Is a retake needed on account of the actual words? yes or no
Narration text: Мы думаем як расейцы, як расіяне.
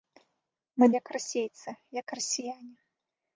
yes